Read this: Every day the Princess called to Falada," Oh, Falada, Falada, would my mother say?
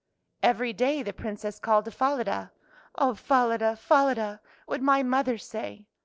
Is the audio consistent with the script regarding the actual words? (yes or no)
yes